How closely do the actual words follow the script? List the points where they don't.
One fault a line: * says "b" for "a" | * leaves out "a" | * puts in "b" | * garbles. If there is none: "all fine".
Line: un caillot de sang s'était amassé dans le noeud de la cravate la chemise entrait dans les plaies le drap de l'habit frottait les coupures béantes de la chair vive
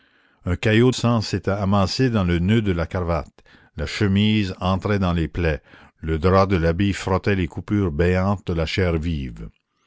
* leaves out "de"